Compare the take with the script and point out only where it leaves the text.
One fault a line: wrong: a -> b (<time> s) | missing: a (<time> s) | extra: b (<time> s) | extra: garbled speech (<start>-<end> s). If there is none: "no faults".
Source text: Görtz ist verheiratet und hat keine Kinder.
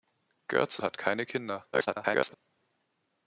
missing: ist verheiratet und (0.8 s)
extra: garbled speech (1.7-2.3 s)